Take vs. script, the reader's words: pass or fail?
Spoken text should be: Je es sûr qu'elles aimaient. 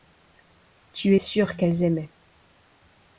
fail